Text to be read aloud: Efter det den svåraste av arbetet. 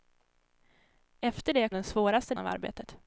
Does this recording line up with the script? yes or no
yes